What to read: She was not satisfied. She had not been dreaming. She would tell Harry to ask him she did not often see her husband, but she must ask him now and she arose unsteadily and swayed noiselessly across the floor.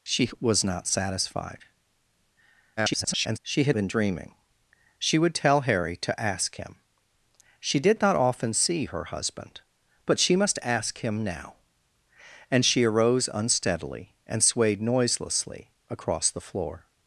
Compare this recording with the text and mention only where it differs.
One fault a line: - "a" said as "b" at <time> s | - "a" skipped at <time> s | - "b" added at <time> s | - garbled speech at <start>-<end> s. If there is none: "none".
- garbled speech at 2.8-3.4 s
- "not" skipped at 3.8 s